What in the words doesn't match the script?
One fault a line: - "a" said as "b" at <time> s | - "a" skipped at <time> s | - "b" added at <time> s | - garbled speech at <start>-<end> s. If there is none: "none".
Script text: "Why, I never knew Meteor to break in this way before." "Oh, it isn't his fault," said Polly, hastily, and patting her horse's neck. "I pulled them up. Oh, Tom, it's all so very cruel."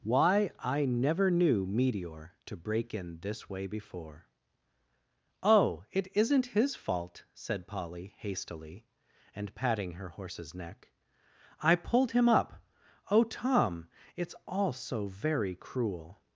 - "them" said as "him" at 12.1 s